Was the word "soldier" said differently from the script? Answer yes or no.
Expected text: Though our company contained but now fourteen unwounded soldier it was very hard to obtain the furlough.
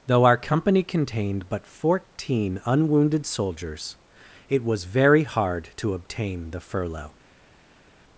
yes